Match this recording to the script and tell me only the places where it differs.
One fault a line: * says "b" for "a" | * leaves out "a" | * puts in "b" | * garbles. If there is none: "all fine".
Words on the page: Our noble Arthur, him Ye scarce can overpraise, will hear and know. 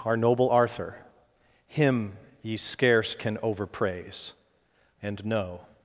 * leaves out "will hear"